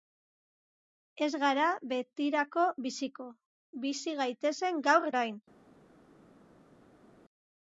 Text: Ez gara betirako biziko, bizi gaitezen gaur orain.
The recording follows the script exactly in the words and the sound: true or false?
true